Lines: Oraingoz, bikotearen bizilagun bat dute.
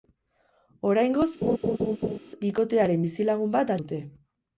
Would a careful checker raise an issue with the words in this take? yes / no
no